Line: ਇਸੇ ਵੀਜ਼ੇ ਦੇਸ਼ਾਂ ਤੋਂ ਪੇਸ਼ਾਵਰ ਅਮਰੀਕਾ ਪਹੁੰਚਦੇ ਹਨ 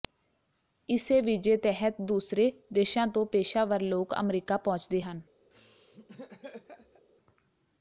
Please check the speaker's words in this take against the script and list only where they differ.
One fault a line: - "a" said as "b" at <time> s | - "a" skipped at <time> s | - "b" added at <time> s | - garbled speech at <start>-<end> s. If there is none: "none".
- "ਤਹਿਤ ਦੂਸਰੇ" added at 1.6 s
- "ਲੋਕ" added at 3.8 s